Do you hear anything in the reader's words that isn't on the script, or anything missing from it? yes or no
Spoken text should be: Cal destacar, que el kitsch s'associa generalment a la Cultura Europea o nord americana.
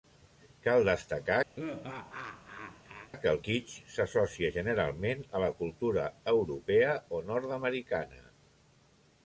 no